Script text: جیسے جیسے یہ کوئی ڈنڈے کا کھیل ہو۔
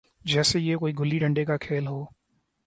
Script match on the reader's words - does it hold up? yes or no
no